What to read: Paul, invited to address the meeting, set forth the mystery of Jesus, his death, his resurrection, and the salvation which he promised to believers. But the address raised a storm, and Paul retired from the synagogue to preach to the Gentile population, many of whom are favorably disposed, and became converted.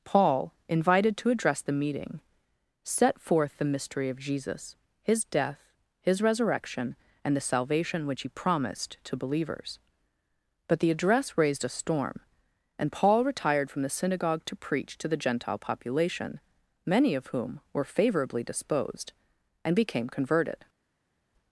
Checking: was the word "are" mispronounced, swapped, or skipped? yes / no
yes